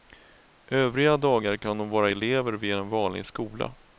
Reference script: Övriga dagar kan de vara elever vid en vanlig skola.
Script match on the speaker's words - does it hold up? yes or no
yes